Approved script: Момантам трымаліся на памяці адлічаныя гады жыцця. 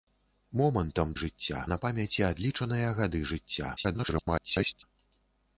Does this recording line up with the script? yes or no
no